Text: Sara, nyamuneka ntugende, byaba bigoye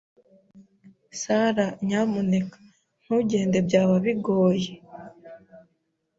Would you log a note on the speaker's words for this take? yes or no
no